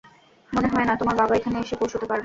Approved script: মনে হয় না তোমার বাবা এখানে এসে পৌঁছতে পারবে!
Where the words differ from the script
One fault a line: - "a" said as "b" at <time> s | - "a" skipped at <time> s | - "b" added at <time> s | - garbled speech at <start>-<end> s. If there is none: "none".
none